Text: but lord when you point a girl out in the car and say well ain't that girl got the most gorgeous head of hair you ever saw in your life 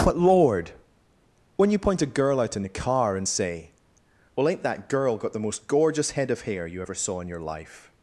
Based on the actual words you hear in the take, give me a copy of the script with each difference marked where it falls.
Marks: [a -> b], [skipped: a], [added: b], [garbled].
but lord when you point a girl out in the car and say well ain't that girl got the most gorgeous head of hair you ever saw in your life